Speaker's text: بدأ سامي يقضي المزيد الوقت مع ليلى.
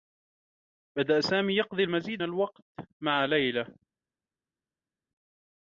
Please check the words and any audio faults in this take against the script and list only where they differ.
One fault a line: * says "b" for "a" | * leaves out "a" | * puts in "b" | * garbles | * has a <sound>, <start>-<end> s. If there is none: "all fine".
all fine